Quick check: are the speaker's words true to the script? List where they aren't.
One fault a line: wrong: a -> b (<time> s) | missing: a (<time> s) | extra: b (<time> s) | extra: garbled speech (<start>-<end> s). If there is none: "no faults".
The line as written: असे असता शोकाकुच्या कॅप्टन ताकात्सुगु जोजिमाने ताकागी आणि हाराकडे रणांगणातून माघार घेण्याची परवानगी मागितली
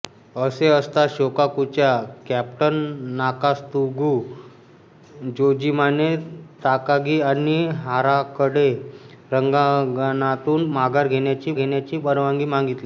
extra: घेण्याची (11.5 s)